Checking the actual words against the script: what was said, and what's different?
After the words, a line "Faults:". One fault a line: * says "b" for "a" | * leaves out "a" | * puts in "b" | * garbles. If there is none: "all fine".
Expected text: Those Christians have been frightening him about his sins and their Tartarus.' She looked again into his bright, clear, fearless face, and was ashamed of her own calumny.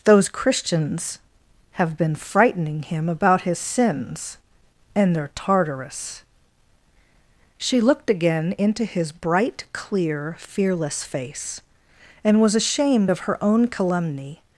Those Christians have been frightening him about his sins and their Tartarus.' She looked again into his bright, clear, fearless face, and was ashamed of her own calumny.
Faults:
all fine